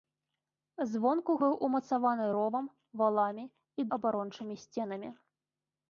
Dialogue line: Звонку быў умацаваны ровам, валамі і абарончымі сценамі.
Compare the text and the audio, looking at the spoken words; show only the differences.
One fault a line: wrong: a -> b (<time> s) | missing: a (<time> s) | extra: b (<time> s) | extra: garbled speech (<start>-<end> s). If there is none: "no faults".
no faults